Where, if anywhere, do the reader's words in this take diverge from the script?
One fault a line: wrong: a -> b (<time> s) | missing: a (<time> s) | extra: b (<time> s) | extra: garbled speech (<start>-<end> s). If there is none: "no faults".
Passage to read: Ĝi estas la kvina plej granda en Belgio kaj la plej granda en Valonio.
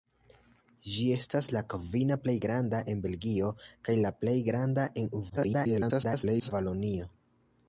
extra: garbled speech (5.3-6.5 s)